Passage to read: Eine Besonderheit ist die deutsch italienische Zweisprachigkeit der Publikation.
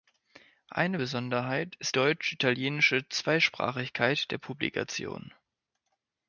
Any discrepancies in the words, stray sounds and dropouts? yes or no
yes